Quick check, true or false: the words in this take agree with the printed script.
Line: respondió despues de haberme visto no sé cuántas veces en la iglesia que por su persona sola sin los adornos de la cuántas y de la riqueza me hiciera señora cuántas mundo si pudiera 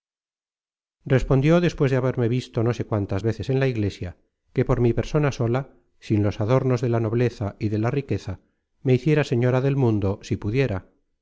false